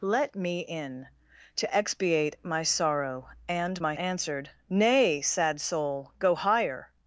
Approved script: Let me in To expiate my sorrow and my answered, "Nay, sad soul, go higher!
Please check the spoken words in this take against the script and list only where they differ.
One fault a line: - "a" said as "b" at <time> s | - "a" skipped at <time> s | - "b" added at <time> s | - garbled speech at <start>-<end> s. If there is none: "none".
none